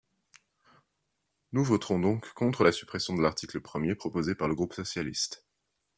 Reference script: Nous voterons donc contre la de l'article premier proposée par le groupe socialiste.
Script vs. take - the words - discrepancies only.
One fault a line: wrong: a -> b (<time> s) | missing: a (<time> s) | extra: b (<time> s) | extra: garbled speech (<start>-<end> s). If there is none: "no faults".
extra: suppression (2.7 s)